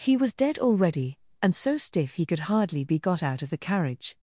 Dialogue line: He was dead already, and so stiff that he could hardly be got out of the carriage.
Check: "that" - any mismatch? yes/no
yes